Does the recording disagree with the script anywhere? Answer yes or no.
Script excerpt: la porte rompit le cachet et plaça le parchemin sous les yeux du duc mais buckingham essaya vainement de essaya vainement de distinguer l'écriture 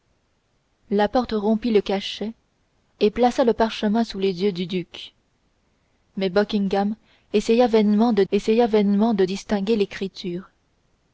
no